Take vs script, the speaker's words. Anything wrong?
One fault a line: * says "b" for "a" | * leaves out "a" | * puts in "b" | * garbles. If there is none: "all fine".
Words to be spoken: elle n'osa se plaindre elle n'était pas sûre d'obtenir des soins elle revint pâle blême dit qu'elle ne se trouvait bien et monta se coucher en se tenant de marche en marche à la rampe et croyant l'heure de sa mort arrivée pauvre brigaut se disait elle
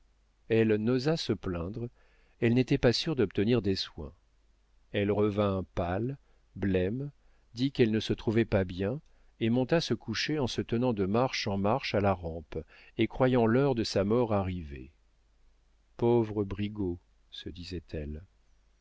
* puts in "pas"